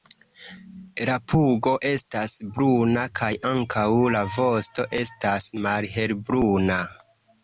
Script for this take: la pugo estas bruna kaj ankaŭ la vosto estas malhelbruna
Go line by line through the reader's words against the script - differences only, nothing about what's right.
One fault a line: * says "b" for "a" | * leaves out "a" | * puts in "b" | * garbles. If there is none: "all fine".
all fine